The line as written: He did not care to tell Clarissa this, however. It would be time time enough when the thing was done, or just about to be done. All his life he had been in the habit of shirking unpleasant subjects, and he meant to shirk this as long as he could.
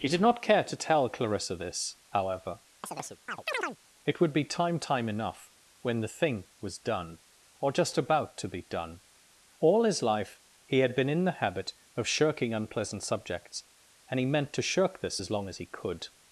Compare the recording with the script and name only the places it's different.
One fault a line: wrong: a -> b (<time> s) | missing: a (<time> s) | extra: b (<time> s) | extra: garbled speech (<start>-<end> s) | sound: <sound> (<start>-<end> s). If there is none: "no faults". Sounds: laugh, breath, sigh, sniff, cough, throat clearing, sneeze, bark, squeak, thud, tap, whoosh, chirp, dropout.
sound: chirp (2.8-3.8 s)